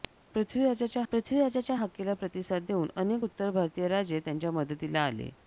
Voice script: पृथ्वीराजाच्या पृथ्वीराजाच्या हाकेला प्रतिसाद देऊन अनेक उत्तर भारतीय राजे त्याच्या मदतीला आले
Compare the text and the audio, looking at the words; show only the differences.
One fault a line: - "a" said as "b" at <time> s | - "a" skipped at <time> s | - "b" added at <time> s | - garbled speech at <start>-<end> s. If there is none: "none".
none